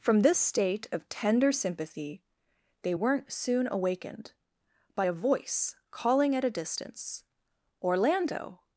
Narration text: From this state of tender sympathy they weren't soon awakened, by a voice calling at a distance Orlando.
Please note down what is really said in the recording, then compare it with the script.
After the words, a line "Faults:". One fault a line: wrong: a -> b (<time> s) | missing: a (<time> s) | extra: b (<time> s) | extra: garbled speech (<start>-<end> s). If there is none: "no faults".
From this state of tender sympathy they weren't soon awakened, by a voice calling at a distance Orlando.
Faults:
no faults